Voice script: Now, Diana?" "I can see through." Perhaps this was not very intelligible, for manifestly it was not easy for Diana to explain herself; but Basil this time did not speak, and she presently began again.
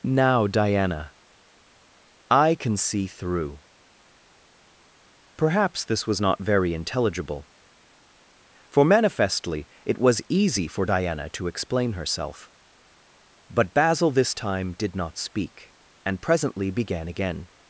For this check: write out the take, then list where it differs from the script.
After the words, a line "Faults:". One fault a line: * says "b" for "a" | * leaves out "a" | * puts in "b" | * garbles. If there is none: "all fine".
Now, Diana?" "I can see through." Perhaps this was not very intelligible, for manifestly it was easy for Diana to explain herself; but Basil this time did not speak, and presently began again.
Faults:
* leaves out "not"
* leaves out "she"